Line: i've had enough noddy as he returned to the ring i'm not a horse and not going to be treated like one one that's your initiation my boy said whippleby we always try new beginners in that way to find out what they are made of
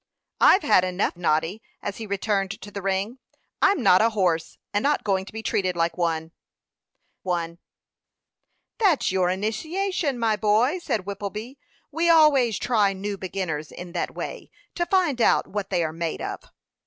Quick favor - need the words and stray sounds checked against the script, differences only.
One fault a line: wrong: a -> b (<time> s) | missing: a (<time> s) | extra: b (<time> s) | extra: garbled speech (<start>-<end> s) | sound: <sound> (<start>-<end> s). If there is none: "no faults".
no faults